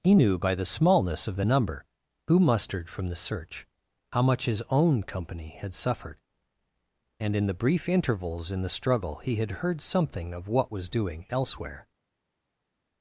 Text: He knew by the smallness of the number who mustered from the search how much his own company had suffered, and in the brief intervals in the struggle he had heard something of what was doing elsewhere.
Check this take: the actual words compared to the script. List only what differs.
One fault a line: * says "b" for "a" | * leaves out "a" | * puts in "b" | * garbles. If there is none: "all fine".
all fine